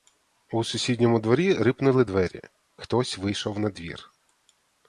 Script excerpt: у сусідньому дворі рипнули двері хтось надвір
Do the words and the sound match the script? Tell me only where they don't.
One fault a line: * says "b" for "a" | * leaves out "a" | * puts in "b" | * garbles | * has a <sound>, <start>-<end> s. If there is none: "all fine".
* puts in "вийшов"